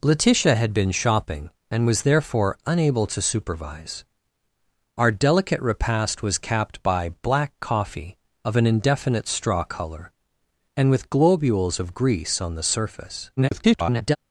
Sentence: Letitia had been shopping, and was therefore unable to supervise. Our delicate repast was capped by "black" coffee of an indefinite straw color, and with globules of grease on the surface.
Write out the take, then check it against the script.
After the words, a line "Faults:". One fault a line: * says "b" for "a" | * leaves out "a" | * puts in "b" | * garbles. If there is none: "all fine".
Letitia had been shopping, and was therefore unable to supervise. Our delicate repast was capped by "black" coffee of an indefinite straw color, and with globules of grease on the surface. [garbled]
Faults:
* garbles